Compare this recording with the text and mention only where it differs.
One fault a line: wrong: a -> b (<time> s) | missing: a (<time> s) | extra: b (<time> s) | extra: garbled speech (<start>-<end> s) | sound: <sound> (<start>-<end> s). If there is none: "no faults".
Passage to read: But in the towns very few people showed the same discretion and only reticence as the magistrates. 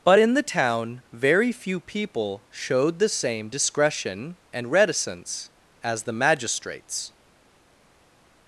wrong: towns -> town (0.4 s)
missing: only (4.7 s)